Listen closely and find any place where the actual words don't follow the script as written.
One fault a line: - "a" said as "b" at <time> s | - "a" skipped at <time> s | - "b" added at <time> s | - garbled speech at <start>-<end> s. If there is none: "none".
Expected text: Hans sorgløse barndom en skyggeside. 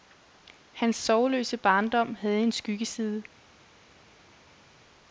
- "havde" added at 2.1 s